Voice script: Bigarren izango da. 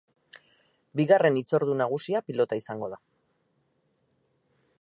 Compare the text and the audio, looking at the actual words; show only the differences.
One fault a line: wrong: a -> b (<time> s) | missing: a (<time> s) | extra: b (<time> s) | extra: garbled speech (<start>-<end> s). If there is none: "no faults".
extra: hitzordu nagusia pilota (1.4 s)